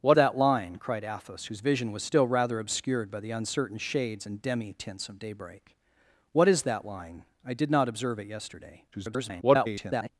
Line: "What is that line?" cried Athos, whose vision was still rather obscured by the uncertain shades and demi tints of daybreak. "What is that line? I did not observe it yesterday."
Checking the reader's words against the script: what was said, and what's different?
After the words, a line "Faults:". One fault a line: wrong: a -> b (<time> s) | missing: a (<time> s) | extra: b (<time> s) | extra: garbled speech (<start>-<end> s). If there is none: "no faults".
"What that line?" cried Athos, whose vision was still rather obscured by the uncertain shades and demi tints of daybreak. "What is that line? I did not observe it yesterday." [garbled]
Faults:
missing: is (0.2 s)
extra: garbled speech (8.9-10.1 s)